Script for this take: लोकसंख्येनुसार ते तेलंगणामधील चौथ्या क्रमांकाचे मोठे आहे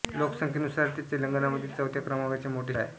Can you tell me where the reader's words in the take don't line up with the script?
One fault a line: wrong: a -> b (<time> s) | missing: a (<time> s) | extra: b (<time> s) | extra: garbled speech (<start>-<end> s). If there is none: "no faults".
no faults